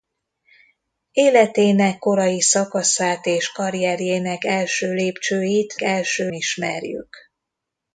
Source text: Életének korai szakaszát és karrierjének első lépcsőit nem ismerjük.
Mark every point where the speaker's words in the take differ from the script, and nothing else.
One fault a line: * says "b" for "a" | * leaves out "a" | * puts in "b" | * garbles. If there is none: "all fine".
* says "első" for "nem"